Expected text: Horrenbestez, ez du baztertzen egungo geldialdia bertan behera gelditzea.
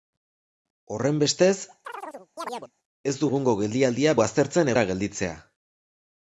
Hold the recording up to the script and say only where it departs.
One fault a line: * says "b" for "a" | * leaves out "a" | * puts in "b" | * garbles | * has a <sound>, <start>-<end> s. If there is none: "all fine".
* has a chirp, 1.8-2.7 s
* leaves out "baztertzen"
* says "baztertzen" for "bertan"